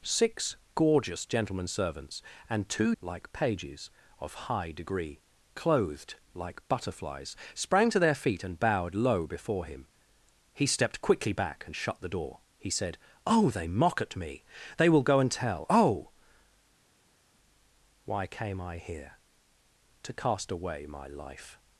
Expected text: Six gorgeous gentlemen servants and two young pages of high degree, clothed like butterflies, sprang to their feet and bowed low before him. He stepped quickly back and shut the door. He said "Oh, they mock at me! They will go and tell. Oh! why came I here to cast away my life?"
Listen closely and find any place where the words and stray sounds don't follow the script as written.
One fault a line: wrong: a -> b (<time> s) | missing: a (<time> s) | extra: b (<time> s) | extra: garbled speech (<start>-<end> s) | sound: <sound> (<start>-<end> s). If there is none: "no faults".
wrong: young -> like (3.0 s)